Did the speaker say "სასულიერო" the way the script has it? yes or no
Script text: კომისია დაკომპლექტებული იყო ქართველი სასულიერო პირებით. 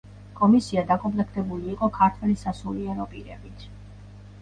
yes